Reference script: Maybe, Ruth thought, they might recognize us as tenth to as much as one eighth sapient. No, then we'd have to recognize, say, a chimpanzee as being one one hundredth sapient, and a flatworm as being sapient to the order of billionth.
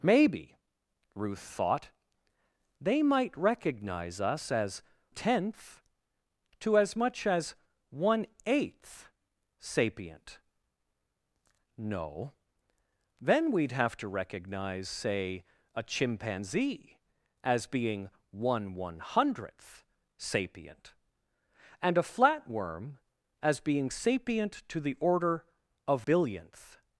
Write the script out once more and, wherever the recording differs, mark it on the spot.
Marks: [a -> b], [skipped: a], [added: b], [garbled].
Maybe, Ruth thought, they might recognize us as tenth to as much as one eighth sapient. No, then we'd have to recognize, say, a chimpanzee as being one one hundredth sapient, and a flatworm as being sapient to the order of billionth.